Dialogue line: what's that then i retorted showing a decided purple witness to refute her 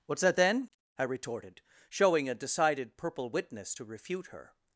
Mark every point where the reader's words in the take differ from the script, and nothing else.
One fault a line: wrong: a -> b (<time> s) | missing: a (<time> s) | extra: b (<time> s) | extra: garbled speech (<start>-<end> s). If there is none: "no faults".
no faults